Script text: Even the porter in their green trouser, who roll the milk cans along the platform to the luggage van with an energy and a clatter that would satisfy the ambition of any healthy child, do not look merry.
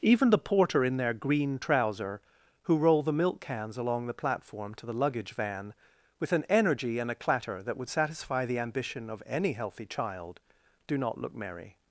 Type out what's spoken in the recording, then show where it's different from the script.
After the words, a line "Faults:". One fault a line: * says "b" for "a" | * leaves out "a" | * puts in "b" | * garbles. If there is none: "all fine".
Even the porter in their green trouser, who roll the milk cans along the platform to the luggage van with an energy and a clatter that would satisfy the ambition of any healthy child, do not look merry.
Faults:
all fine